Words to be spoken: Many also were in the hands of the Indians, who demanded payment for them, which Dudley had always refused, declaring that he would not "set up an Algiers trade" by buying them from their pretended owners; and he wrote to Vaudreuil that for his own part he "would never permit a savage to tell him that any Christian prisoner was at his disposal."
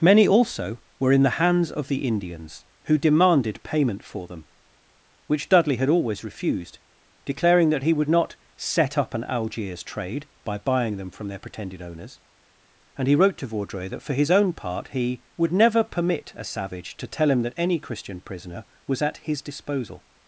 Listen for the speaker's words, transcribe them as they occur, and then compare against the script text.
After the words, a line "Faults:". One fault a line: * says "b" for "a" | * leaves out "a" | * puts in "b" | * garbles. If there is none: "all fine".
Many also were in the hands of the Indians, who demanded payment for them, which Dudley had always refused, declaring that he would not "set up an Algiers trade" by buying them from their pretended owners; and he wrote to Vaudreuil that for his own part he "would never permit a savage to tell him that any Christian prisoner was at his disposal."
Faults:
all fine